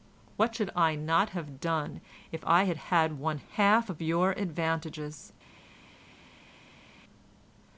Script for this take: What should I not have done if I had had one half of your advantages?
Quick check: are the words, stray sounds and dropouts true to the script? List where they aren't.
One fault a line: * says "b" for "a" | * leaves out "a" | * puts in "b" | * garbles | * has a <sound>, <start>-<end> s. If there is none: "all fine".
all fine